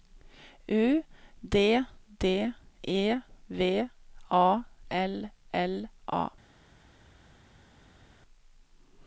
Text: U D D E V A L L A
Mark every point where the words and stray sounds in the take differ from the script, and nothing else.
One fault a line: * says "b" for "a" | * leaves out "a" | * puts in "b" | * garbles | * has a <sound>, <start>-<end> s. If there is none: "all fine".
all fine